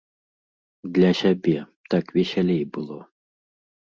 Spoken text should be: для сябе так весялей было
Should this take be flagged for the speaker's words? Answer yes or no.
no